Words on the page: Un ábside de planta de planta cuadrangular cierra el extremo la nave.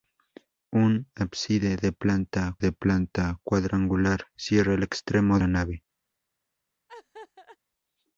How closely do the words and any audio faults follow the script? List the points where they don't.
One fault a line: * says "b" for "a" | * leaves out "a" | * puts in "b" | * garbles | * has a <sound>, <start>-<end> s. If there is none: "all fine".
* has a laugh, 6.9-7.6 s